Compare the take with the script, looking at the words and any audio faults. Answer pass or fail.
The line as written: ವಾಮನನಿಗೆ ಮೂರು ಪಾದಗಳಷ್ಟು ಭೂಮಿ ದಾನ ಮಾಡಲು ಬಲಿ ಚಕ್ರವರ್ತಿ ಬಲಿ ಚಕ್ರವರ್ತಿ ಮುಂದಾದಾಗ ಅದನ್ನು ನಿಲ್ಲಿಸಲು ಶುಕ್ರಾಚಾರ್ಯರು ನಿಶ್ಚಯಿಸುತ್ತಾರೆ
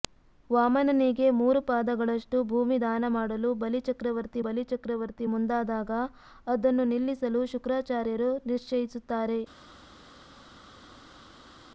pass